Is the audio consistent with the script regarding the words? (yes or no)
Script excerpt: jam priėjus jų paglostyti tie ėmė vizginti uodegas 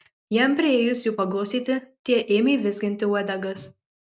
yes